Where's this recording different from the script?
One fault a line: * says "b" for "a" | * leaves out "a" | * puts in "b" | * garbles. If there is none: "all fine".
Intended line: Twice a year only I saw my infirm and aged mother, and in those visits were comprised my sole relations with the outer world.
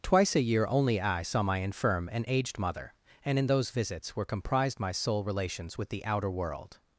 all fine